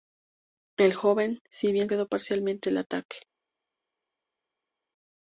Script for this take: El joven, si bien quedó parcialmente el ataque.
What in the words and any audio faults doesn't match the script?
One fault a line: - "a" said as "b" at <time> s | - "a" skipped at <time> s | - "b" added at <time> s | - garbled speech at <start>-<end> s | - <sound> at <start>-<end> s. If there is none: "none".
none